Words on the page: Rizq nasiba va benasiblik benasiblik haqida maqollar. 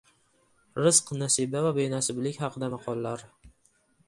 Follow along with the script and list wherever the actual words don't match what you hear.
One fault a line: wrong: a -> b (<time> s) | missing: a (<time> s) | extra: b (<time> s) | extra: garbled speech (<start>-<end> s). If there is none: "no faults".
missing: benasiblik (2.4 s)